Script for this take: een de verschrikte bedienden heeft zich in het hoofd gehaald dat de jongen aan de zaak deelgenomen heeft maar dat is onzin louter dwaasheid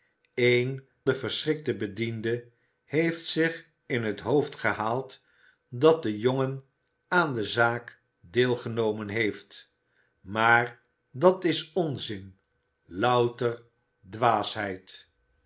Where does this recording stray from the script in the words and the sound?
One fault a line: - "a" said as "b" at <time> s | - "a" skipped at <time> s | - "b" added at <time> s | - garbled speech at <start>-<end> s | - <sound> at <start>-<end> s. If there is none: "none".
none